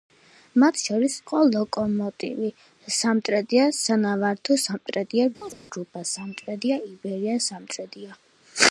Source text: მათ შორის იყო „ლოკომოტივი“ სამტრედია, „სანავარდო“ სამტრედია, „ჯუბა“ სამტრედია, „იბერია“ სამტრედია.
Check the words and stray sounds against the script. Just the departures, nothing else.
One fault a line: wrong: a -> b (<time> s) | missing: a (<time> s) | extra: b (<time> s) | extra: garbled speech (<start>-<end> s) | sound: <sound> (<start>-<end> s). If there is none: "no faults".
sound: chirp (5.4-5.6 s)